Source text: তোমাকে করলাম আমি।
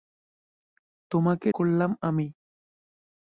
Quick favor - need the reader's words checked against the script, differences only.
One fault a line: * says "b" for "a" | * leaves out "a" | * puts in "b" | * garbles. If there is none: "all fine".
all fine